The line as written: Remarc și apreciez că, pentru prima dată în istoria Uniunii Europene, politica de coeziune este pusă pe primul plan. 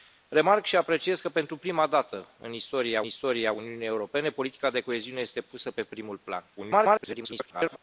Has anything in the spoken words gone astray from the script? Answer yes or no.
yes